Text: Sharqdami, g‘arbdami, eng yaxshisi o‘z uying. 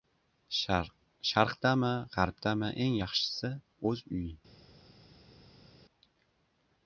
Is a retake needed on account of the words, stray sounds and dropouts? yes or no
no